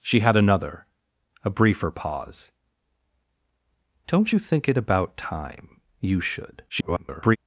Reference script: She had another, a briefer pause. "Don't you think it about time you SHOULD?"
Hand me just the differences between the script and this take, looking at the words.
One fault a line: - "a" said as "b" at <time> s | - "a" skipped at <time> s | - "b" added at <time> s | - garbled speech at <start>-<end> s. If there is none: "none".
- garbled speech at 6.7-7.4 s